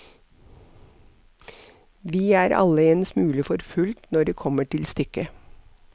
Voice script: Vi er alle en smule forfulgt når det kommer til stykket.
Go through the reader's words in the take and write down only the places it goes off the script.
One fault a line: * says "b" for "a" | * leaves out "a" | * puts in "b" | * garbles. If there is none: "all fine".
all fine